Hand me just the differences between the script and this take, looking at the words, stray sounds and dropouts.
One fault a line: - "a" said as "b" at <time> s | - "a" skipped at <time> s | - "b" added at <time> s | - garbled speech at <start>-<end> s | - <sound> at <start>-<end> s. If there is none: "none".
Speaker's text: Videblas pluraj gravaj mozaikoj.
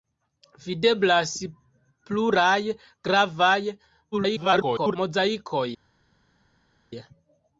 - garbled speech at 4.1-5.0 s